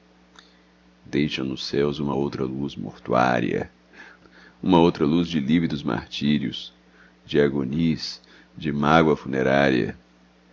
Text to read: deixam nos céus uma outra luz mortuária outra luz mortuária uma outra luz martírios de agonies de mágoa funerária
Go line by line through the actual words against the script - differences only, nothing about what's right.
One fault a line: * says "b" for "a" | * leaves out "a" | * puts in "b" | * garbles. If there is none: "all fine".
* puts in "uma"
* says "de lívidos" for "mortuária uma outra luz"